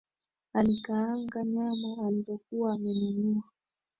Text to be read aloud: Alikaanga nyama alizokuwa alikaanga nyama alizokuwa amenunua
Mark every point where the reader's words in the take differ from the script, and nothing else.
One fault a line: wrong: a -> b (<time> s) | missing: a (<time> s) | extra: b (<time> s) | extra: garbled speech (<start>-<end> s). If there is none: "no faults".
missing: alikaanga nyama alizokuwa (2.7 s)